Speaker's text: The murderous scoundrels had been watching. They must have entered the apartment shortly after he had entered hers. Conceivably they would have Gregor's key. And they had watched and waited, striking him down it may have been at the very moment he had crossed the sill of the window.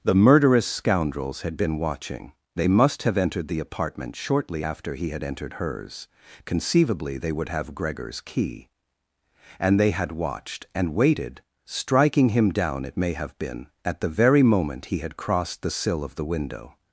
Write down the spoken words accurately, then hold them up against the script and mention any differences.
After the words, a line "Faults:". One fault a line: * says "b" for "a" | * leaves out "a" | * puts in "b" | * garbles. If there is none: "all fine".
The murderous scoundrels had been watching. They must have entered the apartment shortly after he had entered hers. Conceivably they would have Gregor's key. And they had watched and waited, striking him down it may have been at the very moment he had crossed the sill of the window.
Faults:
all fine